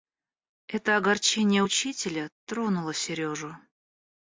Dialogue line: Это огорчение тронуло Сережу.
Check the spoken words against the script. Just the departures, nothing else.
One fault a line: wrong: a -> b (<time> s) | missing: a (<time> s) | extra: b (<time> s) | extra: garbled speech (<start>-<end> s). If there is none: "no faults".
extra: учителя (1.6 s)